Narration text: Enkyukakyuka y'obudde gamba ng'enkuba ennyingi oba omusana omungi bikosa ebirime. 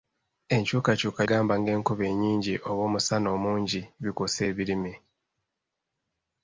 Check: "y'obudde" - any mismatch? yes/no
yes